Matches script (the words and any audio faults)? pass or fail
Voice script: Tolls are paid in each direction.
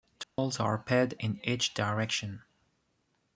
fail